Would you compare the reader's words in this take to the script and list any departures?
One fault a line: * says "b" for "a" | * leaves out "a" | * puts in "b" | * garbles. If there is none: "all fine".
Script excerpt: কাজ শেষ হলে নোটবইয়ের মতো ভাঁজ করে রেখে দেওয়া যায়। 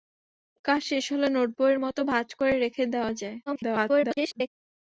* garbles